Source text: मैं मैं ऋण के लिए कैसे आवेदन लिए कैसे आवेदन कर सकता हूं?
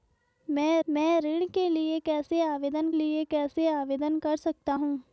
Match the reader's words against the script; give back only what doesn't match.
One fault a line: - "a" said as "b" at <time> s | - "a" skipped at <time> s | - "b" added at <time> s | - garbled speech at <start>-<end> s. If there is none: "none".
none